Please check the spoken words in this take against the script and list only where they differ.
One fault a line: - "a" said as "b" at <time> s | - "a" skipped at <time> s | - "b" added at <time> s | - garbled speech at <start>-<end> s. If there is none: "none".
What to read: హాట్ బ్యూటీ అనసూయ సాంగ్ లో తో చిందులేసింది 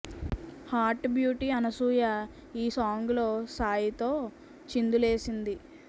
- "ఈ" added at 2.6 s
- "సాయి" added at 3.6 s